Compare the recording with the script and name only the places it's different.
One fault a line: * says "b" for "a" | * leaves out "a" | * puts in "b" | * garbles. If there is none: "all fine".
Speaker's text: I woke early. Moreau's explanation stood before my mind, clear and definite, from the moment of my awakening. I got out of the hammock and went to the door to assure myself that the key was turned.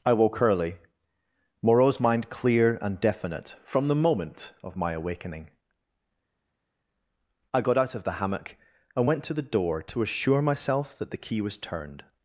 * leaves out "explanation stood before my"